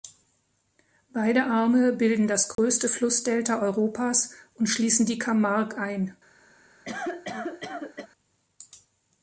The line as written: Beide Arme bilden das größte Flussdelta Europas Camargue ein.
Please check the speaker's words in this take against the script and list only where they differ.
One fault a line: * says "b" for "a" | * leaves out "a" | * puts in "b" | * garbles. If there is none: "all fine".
* puts in "und schließen die"